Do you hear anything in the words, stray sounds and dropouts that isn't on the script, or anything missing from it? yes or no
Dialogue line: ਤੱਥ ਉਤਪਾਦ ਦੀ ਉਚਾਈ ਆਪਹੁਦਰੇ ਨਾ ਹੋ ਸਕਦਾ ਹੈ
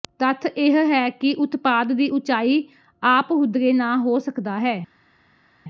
yes